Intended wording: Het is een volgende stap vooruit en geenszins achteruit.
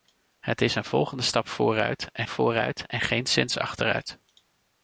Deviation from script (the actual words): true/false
true